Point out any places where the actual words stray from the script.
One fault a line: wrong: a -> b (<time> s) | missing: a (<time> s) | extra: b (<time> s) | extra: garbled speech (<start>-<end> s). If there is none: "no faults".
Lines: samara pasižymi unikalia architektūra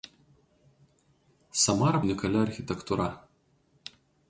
missing: pasižymi (2.0 s)